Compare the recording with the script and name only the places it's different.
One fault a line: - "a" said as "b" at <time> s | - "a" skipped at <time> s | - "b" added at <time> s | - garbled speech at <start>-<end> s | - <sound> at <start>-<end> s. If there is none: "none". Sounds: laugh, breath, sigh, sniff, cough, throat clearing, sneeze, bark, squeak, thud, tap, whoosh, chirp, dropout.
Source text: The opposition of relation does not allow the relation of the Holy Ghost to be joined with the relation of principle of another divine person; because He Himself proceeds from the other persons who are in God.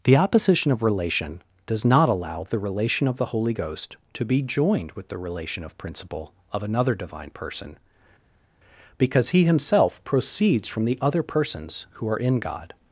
none